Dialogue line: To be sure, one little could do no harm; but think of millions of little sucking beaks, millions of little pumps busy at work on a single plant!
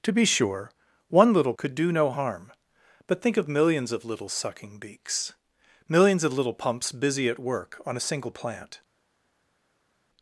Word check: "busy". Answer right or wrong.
right